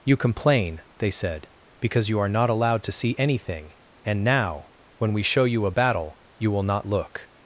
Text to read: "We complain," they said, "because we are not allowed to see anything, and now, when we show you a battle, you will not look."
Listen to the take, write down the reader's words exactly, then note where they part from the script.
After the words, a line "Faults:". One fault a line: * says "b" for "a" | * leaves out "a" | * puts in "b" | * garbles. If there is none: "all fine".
"You complain," they said, "because you are not allowed to see anything, and now, when we show you a battle, you will not look."
Faults:
* says "You" for "We"
* says "you" for "we"